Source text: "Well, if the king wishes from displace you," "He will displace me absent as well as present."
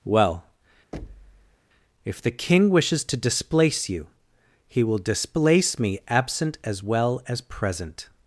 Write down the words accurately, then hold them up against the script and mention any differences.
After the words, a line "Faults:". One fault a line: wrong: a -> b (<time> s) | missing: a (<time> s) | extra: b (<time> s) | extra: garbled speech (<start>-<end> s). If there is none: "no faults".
"Well, if the king wishes to displace you," "He will displace me absent as well as present."
Faults:
wrong: from -> to (3.0 s)